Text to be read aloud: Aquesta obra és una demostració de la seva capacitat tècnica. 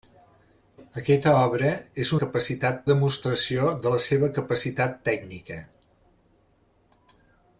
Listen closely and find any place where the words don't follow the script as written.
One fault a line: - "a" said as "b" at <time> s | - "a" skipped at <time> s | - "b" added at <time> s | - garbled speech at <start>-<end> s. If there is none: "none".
- "una" said as "capacitat" at 2.2 s